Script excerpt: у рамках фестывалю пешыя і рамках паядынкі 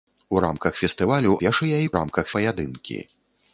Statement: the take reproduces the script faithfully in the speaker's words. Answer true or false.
true